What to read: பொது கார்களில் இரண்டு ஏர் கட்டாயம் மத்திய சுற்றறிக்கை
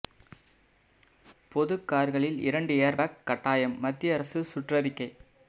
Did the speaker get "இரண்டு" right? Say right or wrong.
right